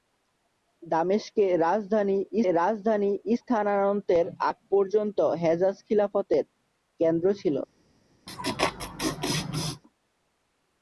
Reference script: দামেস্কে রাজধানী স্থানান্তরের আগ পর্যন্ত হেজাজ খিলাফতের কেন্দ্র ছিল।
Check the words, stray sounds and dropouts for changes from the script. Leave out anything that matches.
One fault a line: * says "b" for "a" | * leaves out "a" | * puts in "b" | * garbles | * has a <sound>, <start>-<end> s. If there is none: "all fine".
* puts in "রাজধানী"
* has a laugh, 8.3-9.8 s